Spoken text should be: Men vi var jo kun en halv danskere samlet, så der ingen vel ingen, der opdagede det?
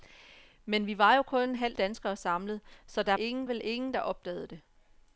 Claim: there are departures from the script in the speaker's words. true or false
false